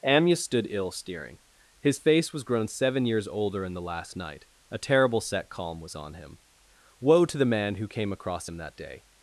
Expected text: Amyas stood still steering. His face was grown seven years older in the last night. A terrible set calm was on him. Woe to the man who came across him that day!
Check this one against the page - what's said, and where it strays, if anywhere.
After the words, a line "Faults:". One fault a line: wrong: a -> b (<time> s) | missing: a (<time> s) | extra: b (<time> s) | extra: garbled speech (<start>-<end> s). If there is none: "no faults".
Amyas stood ill steering. His face was grown seven years older in the last night. A terrible set calm was on him. Woe to the man who came across him that day!
Faults:
wrong: still -> ill (0.7 s)